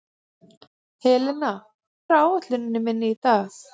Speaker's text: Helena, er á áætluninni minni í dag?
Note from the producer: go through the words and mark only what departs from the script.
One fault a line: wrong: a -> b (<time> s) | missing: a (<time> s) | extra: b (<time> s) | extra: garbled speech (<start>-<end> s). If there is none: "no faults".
no faults